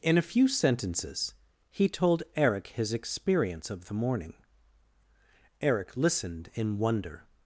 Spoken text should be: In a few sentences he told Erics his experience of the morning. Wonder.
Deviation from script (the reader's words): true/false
true